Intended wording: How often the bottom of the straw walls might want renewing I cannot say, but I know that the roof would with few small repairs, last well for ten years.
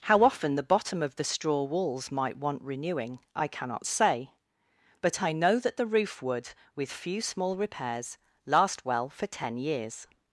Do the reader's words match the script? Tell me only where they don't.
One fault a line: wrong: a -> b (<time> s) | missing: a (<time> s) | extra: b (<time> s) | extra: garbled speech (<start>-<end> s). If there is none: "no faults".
no faults